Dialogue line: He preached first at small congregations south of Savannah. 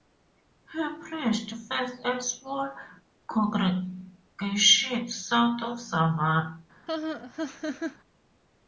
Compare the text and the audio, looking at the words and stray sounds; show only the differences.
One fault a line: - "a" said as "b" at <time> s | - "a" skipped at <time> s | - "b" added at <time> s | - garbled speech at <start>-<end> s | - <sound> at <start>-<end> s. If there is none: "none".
- laugh at 6.9-8.0 s